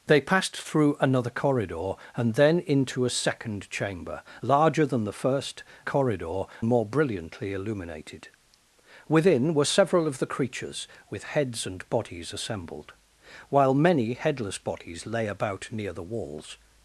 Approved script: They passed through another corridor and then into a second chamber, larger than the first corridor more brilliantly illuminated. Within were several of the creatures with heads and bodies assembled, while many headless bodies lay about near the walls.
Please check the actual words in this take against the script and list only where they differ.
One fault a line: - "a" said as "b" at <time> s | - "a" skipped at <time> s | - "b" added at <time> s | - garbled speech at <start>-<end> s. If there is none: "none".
none